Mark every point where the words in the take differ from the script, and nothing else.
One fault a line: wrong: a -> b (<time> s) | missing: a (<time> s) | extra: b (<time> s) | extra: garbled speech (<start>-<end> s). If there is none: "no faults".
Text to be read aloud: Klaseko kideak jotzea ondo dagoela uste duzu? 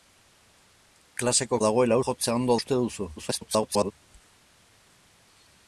wrong: kideak -> dagoela (1.6 s)
missing: dagoela (2.6 s)
extra: garbled speech (3.2-3.9 s)